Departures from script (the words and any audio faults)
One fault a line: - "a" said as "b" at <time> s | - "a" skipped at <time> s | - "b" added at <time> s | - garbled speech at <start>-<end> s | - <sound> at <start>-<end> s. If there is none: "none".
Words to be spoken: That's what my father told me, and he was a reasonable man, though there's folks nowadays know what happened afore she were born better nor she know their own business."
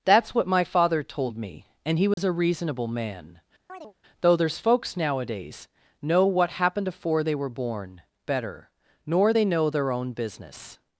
- dropout at 2.1-2.2 s
- chirp at 3.7-3.9 s
- "she" said as "they" at 7.2 s
- "she" said as "they" at 9.3 s